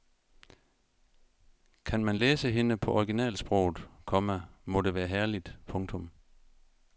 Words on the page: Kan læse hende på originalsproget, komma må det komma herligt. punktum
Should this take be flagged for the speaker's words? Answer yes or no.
yes